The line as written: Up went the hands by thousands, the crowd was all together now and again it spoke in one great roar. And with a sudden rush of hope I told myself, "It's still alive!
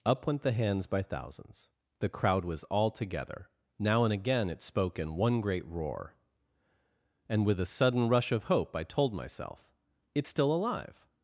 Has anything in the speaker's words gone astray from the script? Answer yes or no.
no